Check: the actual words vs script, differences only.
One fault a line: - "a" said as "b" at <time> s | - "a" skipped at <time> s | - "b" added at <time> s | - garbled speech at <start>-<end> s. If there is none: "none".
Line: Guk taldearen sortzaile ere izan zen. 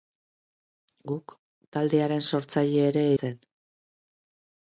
- "izan" skipped at 3.1 s